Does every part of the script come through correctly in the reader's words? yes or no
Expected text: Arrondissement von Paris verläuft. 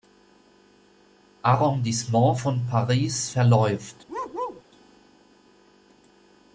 yes